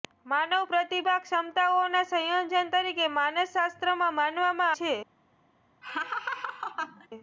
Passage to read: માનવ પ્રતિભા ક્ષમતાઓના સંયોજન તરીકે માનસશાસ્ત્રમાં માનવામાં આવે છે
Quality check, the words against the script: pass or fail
fail